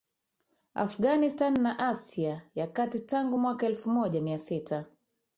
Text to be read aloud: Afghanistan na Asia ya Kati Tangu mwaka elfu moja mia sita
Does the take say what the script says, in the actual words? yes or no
yes